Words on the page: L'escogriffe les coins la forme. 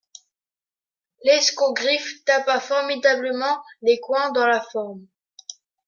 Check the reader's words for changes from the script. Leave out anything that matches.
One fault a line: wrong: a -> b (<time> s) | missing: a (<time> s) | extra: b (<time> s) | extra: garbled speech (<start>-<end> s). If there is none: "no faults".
extra: tapa formidablement (2.2 s)
extra: dans (4.3 s)